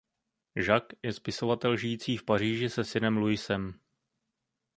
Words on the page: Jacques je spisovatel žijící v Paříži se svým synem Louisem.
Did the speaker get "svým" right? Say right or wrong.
wrong